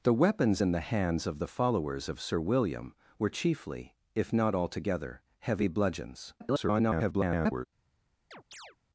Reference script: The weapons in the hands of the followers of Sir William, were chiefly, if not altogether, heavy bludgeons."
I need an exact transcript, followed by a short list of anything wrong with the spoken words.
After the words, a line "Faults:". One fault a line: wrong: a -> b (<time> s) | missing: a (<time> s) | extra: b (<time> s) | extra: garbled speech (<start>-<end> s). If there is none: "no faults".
The weapons in the hands of the followers of Sir William, were chiefly, if not altogether, heavy bludgeons." [garbled]
Faults:
extra: garbled speech (6.4-7.7 s)